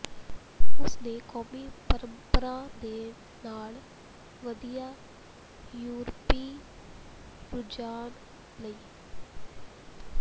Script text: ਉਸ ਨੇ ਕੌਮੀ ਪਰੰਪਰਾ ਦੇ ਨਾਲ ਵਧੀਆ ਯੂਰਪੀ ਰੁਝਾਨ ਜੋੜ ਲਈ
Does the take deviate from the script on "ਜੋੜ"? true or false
true